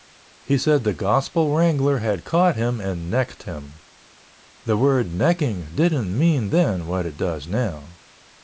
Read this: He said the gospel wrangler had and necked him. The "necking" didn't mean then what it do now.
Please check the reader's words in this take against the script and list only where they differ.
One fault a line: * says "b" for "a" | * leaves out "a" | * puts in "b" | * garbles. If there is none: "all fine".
* puts in "caught him"
* puts in "word"
* says "does" for "do"